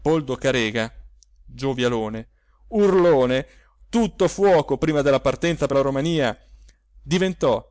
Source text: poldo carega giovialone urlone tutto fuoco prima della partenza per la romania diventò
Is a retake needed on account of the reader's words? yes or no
no